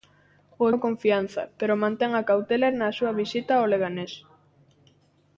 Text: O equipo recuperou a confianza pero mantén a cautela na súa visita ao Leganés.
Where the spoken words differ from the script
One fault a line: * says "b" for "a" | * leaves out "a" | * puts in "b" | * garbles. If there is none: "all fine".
* leaves out "equipo recuperou"